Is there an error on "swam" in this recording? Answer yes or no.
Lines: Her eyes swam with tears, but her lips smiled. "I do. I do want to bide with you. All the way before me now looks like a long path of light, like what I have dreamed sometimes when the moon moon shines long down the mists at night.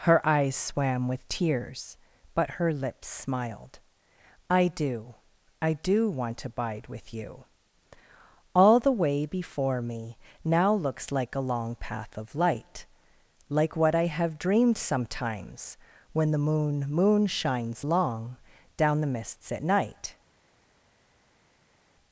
no